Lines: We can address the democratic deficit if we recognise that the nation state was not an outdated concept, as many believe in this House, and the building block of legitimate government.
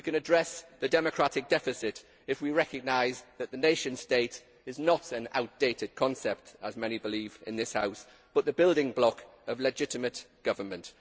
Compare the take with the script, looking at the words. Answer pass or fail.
fail